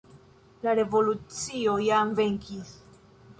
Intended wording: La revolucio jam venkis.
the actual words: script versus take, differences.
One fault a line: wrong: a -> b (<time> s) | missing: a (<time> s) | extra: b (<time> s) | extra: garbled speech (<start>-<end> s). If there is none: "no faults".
no faults